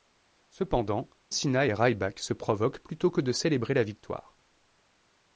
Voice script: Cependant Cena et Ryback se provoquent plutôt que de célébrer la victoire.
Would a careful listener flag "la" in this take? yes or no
no